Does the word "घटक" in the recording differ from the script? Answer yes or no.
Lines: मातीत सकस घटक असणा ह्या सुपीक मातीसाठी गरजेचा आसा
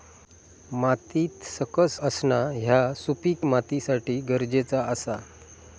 yes